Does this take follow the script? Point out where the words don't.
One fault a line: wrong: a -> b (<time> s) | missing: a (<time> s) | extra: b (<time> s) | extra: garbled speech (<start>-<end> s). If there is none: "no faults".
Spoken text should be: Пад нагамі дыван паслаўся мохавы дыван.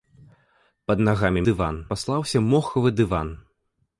no faults